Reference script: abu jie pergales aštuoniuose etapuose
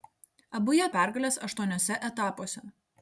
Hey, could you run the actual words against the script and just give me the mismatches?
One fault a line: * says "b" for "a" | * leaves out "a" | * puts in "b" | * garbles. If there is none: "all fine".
all fine